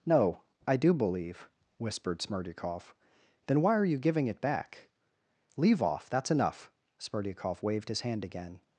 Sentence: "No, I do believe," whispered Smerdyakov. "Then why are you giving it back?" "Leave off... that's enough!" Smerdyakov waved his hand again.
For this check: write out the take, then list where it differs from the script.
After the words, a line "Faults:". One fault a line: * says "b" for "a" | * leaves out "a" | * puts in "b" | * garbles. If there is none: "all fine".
"No, I do believe," whispered Smerdyakov. "Then why are you giving it back?" "Leave off... that's enough!" Smerdyakov waved his hand again.
Faults:
all fine